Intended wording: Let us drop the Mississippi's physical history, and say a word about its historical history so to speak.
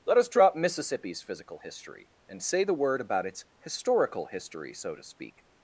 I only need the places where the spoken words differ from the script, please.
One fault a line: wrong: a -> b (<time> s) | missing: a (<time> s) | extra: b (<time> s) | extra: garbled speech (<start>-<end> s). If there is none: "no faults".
missing: the (0.6 s)
wrong: a -> the (2.6 s)